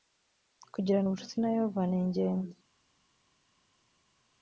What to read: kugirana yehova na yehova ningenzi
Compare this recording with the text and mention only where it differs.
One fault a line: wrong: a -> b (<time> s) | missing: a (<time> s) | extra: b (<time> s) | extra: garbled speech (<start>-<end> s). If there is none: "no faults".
wrong: yehova -> ubucuti (1.0 s)